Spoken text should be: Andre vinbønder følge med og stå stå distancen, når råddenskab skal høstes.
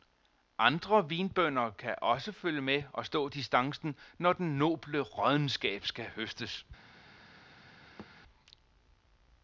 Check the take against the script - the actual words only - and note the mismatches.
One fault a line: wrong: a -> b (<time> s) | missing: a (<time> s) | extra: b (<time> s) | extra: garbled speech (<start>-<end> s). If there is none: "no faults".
extra: kan også (1.7 s)
missing: stå (3.3 s)
extra: den noble (4.3 s)